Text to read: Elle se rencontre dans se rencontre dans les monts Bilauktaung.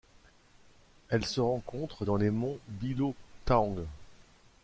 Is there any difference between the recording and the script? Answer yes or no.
yes